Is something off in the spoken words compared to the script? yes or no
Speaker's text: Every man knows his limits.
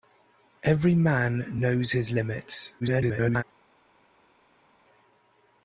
yes